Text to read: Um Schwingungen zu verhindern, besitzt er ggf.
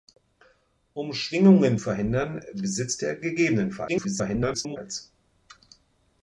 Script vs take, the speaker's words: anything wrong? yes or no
yes